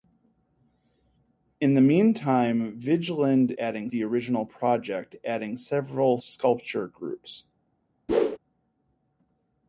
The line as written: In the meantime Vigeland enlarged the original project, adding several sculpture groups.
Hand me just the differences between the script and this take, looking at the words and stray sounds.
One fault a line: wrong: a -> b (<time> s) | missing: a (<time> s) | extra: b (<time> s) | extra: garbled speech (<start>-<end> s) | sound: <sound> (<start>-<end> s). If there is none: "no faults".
wrong: enlarged -> adding (3.6 s)
sound: whoosh (8.1-8.4 s)